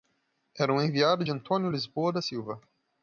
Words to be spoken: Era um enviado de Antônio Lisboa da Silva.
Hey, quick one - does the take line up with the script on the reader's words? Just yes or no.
yes